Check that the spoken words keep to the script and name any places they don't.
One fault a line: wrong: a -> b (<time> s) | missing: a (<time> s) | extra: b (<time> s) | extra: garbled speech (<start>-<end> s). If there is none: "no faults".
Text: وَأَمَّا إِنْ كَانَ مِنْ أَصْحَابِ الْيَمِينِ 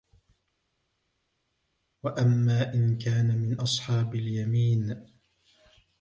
no faults